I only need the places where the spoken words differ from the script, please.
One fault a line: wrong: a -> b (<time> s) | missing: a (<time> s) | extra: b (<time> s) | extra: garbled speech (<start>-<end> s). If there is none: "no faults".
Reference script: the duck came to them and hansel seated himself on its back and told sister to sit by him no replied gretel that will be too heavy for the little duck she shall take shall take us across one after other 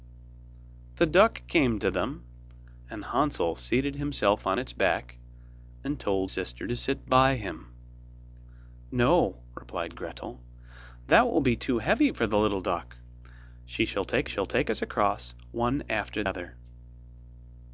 no faults